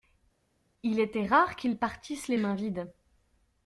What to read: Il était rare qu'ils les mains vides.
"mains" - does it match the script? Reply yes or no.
yes